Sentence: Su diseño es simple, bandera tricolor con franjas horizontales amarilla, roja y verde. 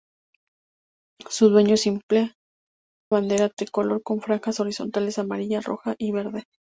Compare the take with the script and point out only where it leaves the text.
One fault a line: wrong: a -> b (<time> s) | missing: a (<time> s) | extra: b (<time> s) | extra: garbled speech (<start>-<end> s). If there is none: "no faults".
no faults